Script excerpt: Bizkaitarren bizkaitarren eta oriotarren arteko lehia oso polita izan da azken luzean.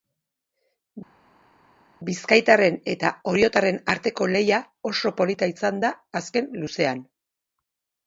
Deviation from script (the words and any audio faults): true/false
true